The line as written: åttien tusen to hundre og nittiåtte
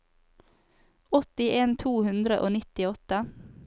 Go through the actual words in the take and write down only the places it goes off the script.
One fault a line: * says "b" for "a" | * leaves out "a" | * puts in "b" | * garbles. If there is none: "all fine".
* leaves out "tusen"